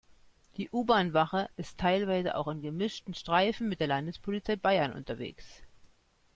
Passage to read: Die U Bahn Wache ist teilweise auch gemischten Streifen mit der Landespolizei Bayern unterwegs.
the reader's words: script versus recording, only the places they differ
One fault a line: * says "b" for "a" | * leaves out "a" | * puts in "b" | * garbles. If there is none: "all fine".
* puts in "in"